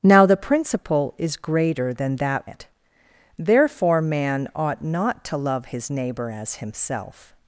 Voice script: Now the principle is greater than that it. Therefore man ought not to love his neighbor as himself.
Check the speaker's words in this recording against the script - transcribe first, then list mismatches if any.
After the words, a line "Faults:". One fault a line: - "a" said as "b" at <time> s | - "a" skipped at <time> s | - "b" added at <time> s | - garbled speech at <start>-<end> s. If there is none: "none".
Now the principle is greater than that it. Therefore man ought not to love his neighbor as himself.
Faults:
none